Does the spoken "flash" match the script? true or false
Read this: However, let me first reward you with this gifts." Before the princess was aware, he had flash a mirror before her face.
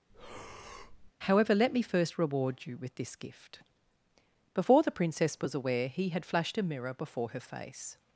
false